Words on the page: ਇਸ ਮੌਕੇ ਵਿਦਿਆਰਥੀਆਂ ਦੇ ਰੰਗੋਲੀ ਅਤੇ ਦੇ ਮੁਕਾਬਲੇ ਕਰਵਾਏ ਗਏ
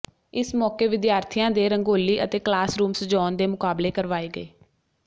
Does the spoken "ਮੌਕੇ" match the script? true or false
true